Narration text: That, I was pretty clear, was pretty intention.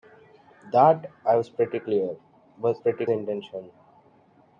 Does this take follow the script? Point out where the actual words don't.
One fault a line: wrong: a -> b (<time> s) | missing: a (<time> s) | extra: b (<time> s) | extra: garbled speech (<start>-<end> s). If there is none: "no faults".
no faults